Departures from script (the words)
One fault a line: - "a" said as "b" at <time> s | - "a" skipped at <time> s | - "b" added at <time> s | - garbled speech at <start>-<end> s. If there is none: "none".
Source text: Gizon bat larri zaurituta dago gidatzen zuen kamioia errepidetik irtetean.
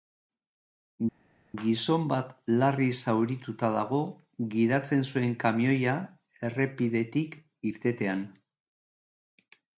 none